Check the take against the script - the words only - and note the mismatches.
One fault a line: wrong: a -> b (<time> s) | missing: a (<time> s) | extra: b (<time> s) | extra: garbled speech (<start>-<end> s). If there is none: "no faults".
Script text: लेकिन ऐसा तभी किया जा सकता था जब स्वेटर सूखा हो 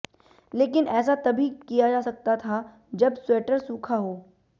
no faults